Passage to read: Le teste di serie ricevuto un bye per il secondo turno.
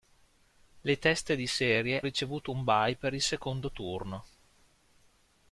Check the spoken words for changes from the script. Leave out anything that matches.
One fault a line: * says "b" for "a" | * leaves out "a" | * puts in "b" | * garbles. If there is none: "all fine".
all fine